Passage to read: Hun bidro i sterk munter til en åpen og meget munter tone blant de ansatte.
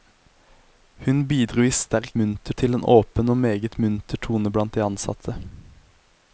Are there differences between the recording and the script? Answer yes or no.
no